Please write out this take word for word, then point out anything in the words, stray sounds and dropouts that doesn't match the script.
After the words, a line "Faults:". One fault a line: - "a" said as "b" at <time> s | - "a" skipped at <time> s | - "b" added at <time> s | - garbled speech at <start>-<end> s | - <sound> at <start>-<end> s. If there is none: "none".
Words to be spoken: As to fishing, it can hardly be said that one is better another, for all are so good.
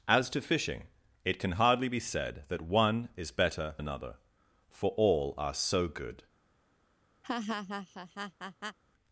As to fishing, it can hardly be said that one is better another, for all are so good.
Faults:
- laugh at 7.2-8.8 s